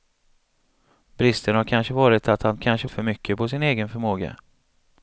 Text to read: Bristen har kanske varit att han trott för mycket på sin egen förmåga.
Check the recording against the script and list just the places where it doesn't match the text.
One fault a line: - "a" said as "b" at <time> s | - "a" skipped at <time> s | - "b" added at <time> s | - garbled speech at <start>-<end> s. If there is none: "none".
- "trott" said as "kanske" at 2.6 s